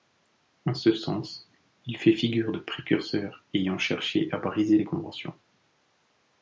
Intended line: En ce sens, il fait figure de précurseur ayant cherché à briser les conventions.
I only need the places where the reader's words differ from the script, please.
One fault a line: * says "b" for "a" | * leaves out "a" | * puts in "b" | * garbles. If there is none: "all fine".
all fine